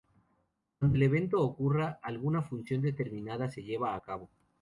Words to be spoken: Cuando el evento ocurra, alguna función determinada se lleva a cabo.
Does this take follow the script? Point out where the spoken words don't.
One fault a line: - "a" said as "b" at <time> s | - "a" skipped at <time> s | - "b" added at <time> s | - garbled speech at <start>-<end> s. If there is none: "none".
none